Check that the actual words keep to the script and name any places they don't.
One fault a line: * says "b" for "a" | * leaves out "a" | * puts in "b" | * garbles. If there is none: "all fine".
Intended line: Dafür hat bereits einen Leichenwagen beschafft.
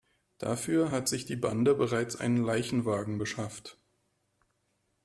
* puts in "sich die Bande"